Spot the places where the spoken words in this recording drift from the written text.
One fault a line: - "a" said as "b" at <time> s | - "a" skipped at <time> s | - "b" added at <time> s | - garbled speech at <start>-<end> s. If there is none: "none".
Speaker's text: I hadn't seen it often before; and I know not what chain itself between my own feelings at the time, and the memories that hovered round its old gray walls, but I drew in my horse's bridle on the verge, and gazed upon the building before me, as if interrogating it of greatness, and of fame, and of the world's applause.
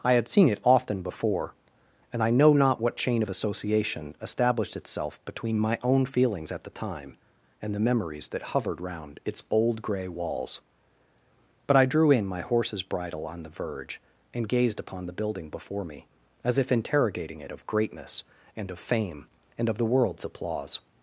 - "hadn't" said as "had" at 0.1 s
- "of association established" added at 3.2 s